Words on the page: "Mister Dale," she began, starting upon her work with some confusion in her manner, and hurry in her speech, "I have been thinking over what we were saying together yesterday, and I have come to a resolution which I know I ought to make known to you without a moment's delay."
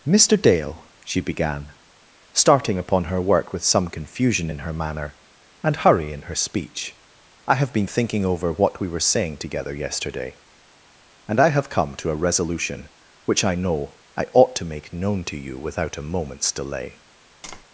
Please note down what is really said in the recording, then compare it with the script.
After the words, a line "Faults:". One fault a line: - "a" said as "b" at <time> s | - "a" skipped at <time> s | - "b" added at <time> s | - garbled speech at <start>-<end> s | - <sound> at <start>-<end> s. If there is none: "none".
"Mister Dale," she began, starting upon her work with some confusion in her manner, and hurry in her speech, "I have been thinking over what we were saying together yesterday, and I have come to a resolution which I know I ought to make known to you without a moment's delay."
Faults:
- tap at 17.4-17.6 s